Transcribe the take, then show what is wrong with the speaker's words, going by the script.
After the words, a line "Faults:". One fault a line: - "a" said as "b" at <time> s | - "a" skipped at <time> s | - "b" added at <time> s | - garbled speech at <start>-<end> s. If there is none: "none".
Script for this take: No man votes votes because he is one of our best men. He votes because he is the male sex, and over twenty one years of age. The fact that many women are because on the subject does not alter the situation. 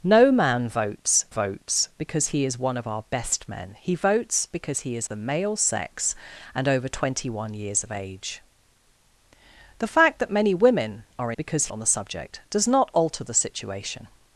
No man votes votes because he is one of our best men. He votes because he is the male sex, and over twenty one years of age. The fact that many women are because on the subject does not alter the situation.
Faults:
none